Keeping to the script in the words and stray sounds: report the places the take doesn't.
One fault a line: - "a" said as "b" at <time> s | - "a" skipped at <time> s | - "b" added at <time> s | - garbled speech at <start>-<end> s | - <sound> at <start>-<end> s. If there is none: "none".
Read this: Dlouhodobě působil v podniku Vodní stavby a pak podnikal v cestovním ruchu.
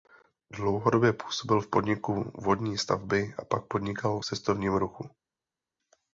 - "v" skipped at 4.2 s